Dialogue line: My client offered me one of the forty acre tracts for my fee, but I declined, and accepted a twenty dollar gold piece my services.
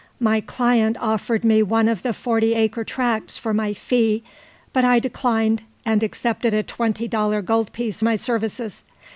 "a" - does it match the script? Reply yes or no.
yes